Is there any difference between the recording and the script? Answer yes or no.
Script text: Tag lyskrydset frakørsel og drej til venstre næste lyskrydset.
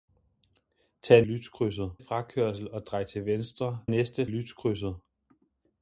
no